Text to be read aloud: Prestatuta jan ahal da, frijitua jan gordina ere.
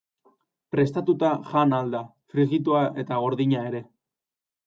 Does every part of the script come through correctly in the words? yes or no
no